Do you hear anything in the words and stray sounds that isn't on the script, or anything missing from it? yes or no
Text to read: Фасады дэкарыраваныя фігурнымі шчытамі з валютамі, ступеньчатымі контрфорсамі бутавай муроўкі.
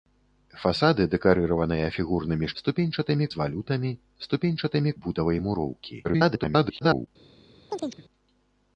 yes